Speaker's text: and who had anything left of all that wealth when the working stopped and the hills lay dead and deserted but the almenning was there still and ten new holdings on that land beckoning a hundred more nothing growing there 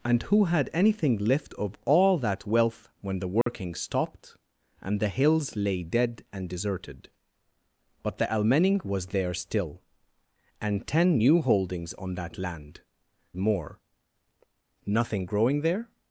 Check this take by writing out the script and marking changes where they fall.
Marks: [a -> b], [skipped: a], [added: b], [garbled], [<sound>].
and who had anything left of all that wealth when the working [dropout] stopped and the hills lay dead and deserted but the almenning was there still and ten new holdings on that land [skipped: beckoning a hundred] more nothing growing there